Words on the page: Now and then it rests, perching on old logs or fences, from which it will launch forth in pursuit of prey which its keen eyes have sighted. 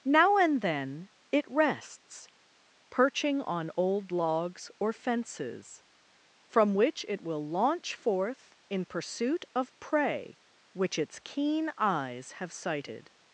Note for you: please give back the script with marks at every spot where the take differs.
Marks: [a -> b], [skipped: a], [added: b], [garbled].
Now and then it rests, perching on old logs or fences, from which it will launch forth in pursuit of prey which its keen eyes have sighted.